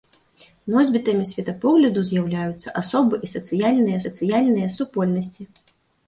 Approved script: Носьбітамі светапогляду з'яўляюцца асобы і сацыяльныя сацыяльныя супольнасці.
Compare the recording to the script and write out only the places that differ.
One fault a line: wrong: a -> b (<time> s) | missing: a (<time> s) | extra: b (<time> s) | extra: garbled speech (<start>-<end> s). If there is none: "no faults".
no faults